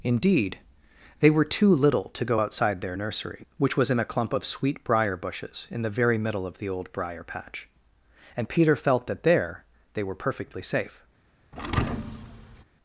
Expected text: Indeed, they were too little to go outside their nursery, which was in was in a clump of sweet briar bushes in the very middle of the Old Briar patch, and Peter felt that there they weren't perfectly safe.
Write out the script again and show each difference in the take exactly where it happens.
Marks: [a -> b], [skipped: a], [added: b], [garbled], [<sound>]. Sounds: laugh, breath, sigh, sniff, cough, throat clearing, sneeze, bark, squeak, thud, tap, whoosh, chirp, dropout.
Indeed, they were too little to go outside their nursery, which was in [skipped: was in] a clump of sweet briar bushes in the very middle of the Old Briar patch, and Peter felt that there they [weren't -> were] perfectly safe. [thud]